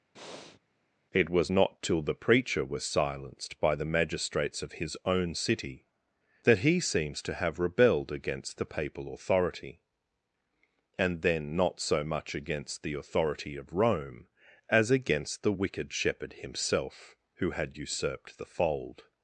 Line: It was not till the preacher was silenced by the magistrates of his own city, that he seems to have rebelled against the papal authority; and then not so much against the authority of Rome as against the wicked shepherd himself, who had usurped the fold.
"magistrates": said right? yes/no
yes